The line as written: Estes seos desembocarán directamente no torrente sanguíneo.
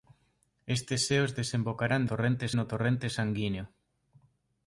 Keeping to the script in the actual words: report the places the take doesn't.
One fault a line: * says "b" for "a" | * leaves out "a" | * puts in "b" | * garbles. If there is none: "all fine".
* says "torrente" for "directamente"